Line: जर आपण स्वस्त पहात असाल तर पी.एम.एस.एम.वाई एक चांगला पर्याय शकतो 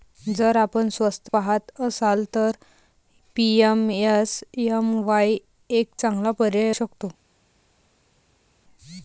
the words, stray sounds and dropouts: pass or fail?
pass